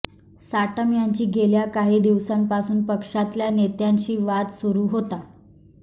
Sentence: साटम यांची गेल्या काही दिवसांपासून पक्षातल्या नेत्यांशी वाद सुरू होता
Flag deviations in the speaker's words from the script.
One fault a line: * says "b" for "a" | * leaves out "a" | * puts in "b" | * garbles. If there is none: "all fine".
all fine